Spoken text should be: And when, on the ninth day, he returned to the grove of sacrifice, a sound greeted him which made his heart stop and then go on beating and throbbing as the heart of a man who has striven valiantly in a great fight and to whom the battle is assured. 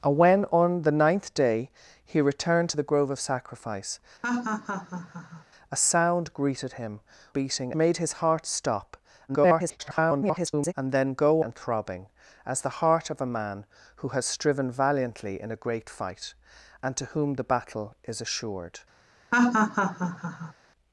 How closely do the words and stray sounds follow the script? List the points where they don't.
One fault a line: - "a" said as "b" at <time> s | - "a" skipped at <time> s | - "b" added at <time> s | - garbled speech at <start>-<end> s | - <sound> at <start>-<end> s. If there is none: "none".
- laugh at 4.2-5.5 s
- "which" said as "beating" at 7.3 s
- garbled speech at 9.3-10.7 s
- "on beating" skipped at 11.4 s
- laugh at 19.3-20.5 s